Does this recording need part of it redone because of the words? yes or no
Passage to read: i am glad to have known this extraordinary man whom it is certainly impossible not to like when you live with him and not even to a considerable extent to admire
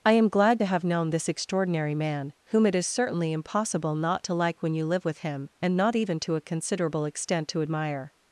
no